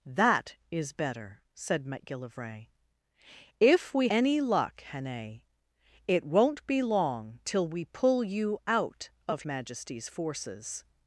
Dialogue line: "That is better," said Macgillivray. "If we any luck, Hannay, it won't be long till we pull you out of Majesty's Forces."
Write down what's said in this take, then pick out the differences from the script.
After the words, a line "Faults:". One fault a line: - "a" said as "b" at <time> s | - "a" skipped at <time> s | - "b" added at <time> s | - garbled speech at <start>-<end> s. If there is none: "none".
"That is better," said Macgillivray. "If we any luck, Hannay, it won't be long till we pull you out of Majesty's Forces."
Faults:
none